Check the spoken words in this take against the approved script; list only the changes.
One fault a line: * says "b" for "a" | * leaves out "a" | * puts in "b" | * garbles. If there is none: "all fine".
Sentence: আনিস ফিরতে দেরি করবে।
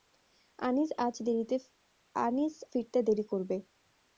all fine